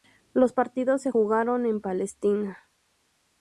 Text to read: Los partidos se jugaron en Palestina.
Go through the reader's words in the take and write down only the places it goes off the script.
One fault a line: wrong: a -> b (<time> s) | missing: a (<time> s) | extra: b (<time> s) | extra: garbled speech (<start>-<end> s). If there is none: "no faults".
no faults